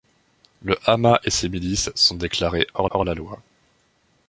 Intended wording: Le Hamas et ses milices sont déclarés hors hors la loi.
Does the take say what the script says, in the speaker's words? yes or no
yes